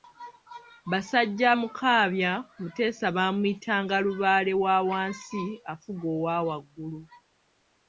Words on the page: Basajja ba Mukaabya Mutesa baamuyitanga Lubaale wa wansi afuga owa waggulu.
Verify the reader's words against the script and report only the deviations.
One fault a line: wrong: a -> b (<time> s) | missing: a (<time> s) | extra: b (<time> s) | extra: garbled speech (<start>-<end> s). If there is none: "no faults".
missing: ba (1.5 s)